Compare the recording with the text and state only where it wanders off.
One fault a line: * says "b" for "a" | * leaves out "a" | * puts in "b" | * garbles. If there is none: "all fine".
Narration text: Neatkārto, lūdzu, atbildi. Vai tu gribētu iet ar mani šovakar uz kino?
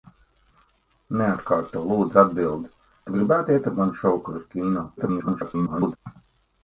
* leaves out "Vai"
* garbles